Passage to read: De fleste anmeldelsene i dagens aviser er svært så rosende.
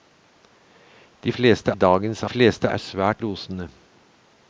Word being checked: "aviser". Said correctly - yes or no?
no